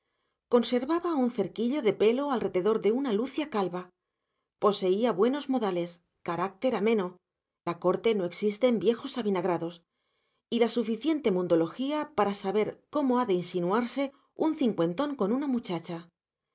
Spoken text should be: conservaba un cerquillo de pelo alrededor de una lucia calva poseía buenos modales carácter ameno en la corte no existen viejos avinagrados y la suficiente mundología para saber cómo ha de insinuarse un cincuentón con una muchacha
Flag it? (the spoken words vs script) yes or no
yes